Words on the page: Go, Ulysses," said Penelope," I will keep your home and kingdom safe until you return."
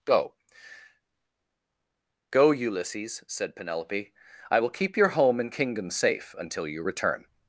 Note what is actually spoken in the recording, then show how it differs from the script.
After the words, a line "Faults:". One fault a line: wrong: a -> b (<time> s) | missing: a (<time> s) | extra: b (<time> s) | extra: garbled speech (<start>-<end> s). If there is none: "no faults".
Go, go Ulysses," said Penelope," I will keep your home and kingdom safe until you return."
Faults:
extra: go (2.3 s)